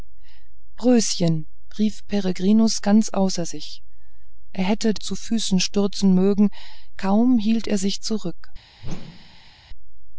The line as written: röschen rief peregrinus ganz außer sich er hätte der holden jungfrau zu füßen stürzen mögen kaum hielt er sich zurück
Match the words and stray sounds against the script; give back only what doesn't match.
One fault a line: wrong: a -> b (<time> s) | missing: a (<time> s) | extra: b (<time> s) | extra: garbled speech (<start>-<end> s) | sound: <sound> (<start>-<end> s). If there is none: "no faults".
missing: der holden jungfrau (5.0 s)
sound: whoosh (8.8-9.5 s)